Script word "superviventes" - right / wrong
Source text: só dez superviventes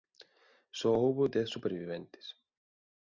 right